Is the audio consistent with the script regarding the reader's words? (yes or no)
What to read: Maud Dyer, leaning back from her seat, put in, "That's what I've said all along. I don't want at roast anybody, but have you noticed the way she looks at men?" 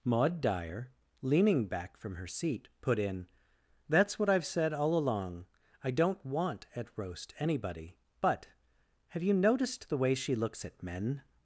yes